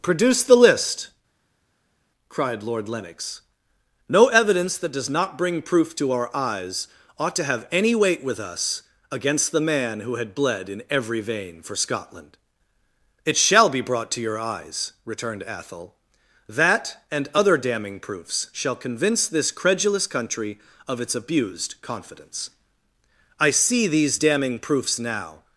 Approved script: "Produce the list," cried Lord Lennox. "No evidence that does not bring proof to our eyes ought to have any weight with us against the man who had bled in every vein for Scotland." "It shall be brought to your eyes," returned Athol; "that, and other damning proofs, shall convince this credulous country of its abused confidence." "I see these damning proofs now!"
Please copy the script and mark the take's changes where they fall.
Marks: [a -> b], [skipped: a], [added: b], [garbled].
"Produce the list," cried Lord Lennox. "No evidence that does not bring proof to our eyes ought to have any weight with us against the man who had bled in every vein for Scotland." "It shall be brought to your eyes," returned Athol; "that, and other damning proofs, shall convince this credulous country of its abused confidence." "I see these damning proofs now!"